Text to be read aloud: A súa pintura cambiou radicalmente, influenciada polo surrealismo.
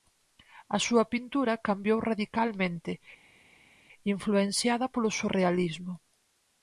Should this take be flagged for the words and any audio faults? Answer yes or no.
no